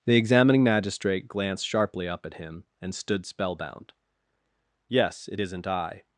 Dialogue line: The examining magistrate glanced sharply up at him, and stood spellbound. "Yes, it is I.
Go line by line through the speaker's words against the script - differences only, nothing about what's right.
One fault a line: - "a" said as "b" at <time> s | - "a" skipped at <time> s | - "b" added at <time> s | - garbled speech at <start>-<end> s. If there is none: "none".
- "is" said as "isn't" at 5.4 s